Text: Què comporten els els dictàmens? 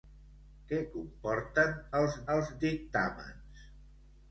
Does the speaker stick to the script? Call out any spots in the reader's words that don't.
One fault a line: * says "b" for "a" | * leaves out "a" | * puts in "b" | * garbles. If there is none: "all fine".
all fine